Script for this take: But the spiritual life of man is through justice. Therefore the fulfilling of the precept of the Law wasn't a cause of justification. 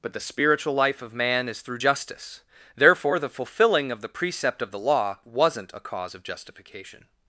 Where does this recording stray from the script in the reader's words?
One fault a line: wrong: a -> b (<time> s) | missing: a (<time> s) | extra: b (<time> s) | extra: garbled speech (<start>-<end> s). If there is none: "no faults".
no faults